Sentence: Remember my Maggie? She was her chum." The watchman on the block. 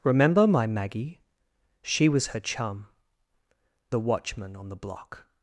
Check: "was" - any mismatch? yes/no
no